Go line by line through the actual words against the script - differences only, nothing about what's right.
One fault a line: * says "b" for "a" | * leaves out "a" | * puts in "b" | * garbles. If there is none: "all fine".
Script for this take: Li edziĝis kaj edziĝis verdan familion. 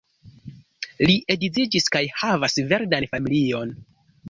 * says "havas" for "edziĝis"